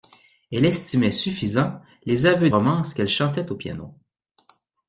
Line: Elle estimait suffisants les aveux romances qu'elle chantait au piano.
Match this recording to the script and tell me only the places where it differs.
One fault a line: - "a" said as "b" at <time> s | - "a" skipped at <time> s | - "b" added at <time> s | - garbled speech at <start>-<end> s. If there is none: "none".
none